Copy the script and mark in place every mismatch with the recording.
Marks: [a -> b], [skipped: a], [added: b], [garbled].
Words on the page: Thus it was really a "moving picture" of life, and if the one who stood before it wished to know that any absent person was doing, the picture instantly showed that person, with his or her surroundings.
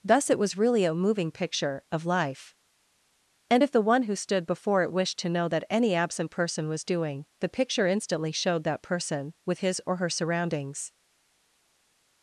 Thus it was really a "moving picture" of life, and if the one who stood before it wished to know that any absent person was doing, the picture instantly showed that person, with his or her surroundings.